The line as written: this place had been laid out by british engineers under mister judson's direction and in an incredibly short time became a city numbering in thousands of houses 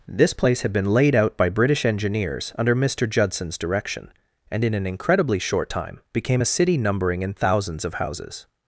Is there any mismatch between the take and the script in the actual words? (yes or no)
no